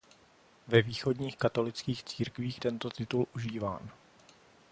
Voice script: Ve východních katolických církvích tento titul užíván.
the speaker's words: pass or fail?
pass